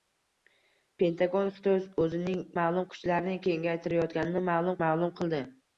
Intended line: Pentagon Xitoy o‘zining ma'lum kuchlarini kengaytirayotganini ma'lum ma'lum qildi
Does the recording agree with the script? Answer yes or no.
yes